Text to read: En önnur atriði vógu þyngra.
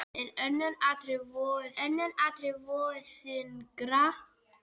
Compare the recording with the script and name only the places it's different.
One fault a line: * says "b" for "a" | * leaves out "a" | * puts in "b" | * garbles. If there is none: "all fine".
* puts in "önnur atriði vógu"